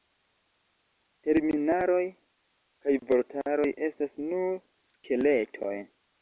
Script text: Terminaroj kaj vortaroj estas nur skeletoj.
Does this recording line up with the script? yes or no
yes